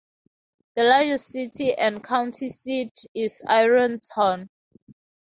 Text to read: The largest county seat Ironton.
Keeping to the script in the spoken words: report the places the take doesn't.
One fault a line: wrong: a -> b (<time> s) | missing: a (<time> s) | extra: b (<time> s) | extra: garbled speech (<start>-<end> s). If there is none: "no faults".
extra: city and (1.3 s)
extra: is (3.1 s)